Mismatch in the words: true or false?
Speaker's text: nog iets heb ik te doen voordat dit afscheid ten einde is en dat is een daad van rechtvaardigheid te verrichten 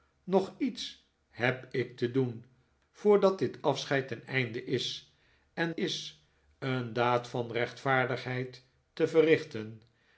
true